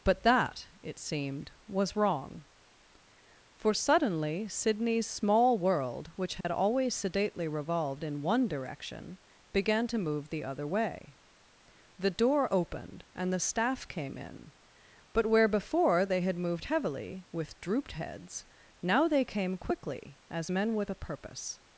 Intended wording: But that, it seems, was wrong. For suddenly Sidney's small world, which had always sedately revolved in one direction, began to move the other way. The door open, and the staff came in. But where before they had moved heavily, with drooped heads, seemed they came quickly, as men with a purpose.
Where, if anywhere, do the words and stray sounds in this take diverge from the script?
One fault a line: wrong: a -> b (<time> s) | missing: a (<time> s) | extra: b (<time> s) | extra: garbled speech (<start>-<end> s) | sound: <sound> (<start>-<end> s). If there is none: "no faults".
wrong: seems -> seemed (1.0 s)
sound: dropout (6.4-6.4 s)
wrong: open -> opened (12.5 s)
wrong: seemed -> now (18.8 s)